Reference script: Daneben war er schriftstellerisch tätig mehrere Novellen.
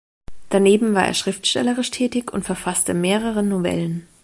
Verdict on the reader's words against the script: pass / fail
fail